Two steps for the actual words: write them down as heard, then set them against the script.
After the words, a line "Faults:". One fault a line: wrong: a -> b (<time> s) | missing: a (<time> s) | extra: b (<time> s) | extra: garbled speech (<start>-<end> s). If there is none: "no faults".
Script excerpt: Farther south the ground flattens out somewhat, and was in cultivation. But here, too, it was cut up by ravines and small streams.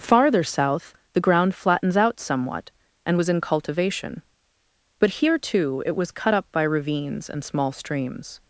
Farther south the ground flattens out somewhat, and was in cultivation. But here, too, it was cut up by ravines and small streams.
Faults:
no faults